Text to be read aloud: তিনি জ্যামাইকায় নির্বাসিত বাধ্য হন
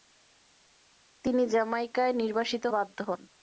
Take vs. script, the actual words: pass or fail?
pass